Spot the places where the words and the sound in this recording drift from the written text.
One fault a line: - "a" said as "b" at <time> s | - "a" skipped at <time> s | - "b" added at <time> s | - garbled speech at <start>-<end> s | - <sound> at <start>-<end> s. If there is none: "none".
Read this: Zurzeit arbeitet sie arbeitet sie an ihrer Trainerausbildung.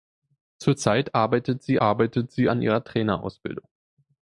none